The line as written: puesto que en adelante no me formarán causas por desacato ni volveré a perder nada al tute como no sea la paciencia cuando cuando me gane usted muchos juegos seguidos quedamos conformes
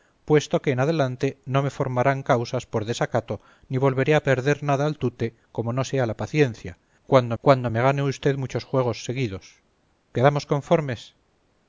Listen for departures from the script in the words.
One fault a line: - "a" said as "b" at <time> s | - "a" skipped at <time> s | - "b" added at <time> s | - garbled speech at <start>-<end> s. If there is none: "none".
none